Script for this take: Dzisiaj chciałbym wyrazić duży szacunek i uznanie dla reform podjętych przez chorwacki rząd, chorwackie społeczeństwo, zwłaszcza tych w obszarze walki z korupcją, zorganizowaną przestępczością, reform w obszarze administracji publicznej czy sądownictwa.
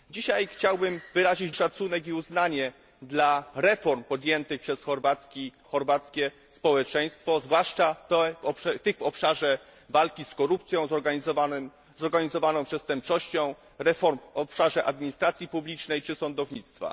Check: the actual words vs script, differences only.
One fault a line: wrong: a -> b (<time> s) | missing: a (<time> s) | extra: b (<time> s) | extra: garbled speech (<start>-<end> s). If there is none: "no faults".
missing: duży (1.5 s)
missing: rząd (5.5 s)